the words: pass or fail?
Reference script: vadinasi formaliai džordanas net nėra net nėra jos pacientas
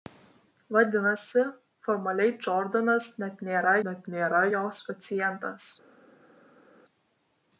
pass